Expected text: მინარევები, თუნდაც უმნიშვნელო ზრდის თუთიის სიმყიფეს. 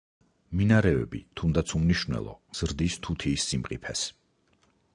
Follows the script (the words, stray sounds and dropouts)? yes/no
yes